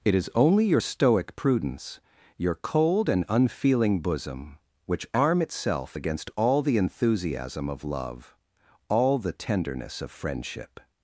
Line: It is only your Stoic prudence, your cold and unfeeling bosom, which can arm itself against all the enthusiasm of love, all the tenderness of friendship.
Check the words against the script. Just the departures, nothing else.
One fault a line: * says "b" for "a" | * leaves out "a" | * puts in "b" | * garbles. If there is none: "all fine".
* leaves out "can"